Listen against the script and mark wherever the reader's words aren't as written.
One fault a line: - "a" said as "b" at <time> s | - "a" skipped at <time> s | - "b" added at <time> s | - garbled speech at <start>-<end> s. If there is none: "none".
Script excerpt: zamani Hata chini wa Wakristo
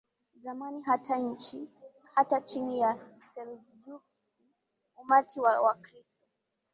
- "ya Seljuks umati" added at 2.8 s